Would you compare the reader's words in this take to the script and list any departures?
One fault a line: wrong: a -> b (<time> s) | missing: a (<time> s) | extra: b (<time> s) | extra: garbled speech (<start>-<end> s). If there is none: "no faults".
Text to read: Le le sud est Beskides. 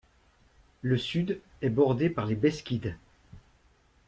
missing: le (1.0 s)
extra: bordé par les (1.7 s)